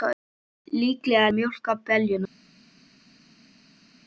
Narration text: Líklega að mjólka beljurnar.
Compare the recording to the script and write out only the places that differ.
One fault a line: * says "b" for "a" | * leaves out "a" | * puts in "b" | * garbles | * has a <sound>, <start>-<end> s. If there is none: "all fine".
all fine